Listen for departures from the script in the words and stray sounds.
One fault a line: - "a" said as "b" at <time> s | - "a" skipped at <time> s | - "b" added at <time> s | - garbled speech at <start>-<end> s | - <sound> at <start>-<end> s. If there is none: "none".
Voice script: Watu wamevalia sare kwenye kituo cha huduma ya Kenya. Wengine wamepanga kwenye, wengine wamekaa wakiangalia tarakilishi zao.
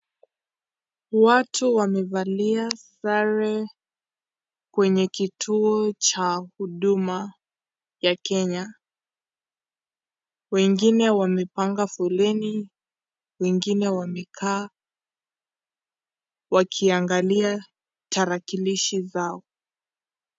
- "kwenye" said as "foleni" at 11.9 s